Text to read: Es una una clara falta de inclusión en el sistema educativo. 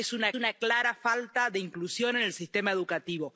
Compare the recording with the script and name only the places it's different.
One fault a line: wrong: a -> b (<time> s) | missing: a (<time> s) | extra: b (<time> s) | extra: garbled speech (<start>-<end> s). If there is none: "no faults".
no faults